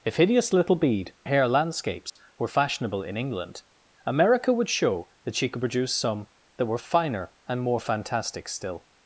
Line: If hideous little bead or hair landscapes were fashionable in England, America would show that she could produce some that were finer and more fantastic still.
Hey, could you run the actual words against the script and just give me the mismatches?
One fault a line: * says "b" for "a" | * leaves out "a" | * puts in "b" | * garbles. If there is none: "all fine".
* leaves out "or"